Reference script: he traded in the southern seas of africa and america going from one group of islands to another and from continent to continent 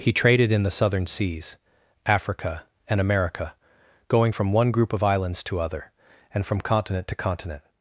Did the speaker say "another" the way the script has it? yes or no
no